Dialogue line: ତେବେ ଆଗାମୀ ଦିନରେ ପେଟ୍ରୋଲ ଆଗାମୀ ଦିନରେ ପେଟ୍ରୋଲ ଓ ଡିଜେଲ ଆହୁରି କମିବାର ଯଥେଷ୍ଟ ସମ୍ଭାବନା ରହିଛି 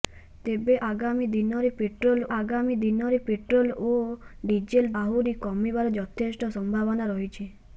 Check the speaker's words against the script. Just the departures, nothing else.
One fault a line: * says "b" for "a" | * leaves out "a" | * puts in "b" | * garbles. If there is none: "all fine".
all fine